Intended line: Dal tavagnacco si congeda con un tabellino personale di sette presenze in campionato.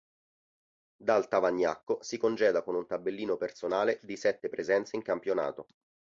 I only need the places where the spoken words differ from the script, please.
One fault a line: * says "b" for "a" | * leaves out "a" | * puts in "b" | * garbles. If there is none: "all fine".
all fine